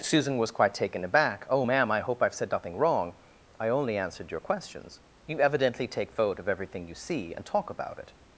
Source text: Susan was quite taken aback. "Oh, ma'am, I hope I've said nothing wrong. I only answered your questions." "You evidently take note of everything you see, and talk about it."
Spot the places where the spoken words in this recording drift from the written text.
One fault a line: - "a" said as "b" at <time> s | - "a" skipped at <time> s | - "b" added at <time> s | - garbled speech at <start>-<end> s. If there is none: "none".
- "note" said as "vote" at 6.1 s